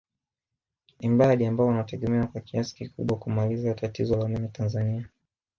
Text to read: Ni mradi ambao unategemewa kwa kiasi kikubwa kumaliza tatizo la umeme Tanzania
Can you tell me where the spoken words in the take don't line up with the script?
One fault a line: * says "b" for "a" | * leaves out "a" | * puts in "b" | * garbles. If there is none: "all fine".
all fine